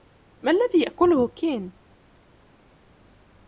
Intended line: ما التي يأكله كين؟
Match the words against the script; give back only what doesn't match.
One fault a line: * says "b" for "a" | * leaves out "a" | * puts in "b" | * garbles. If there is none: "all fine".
* says "الذي" for "التي"